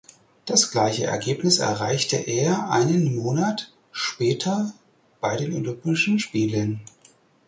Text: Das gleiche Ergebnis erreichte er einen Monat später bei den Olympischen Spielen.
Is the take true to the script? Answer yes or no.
yes